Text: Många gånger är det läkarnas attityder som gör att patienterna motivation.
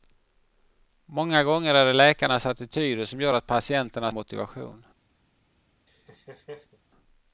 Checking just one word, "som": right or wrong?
right